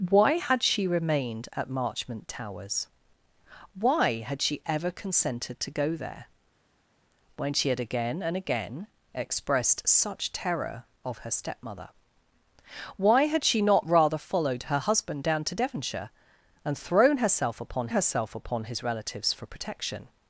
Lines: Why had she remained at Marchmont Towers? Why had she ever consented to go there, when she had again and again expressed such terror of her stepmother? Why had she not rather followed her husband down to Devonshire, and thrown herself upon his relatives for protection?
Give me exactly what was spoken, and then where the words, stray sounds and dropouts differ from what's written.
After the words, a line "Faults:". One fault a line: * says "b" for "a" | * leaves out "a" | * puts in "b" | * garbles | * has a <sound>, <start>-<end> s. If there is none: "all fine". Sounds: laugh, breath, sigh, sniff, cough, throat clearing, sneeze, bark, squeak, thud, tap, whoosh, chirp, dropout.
Why had she remained at Marchmont Towers? Why had she ever consented to go there, when she had again and again expressed such terror of her stepmother? Why had she not rather followed her husband down to Devonshire, and thrown herself upon herself upon his relatives for protection?
Faults:
* puts in "herself upon"